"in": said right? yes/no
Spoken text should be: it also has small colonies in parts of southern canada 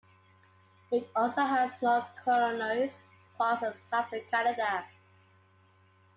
no